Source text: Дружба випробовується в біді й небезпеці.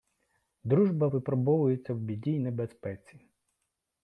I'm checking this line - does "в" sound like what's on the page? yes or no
yes